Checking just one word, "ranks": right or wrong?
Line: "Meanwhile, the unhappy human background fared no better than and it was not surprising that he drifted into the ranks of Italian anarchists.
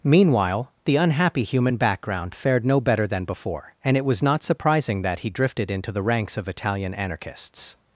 right